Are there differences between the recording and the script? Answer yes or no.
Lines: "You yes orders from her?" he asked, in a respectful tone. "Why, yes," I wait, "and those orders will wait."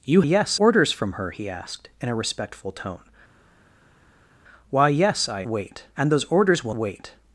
no